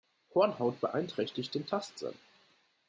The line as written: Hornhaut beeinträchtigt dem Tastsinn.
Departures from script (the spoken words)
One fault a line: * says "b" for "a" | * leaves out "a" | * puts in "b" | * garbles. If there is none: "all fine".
* says "den" for "dem"